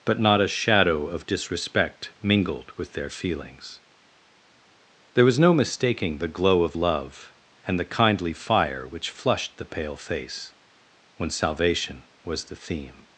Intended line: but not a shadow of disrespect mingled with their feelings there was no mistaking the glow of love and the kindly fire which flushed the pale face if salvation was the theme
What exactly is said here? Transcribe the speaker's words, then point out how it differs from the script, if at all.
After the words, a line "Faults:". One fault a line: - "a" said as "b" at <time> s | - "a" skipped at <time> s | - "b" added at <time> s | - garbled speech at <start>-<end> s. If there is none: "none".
but not a shadow of disrespect mingled with their feelings there was no mistaking the glow of love and the kindly fire which flushed the pale face when salvation was the theme
Faults:
- "if" said as "when" at 11.2 s